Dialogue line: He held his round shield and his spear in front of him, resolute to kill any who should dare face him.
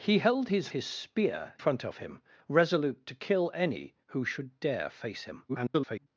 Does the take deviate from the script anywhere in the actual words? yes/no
yes